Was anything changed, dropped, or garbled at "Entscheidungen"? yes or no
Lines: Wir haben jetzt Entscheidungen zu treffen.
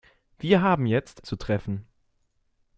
yes